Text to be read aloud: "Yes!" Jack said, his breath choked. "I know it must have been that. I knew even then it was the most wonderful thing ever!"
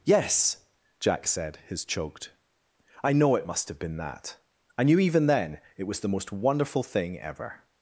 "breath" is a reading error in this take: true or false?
true